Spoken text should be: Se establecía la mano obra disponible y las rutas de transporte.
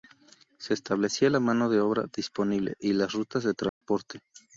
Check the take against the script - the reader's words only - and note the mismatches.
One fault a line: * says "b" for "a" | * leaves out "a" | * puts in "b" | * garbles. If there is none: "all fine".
* puts in "de"